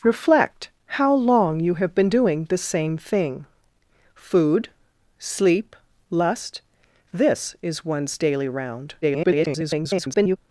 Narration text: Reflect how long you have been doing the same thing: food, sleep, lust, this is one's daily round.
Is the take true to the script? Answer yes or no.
no